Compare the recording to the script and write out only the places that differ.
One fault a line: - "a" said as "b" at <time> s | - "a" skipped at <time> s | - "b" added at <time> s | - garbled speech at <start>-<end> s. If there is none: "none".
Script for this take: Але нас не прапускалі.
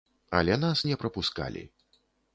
none